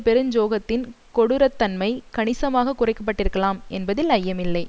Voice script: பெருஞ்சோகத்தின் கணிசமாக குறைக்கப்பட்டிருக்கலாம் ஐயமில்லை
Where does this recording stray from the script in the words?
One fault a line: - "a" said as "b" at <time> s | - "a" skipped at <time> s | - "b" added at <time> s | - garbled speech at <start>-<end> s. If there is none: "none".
- "கொடூரத்தன்மை" added at 1.1 s
- "என்பதில்" added at 3.7 s